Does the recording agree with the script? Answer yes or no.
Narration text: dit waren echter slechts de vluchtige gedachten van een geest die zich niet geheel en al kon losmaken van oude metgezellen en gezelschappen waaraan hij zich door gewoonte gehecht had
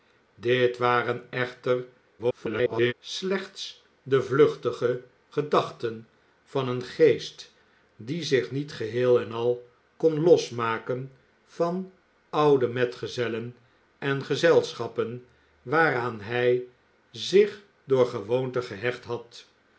no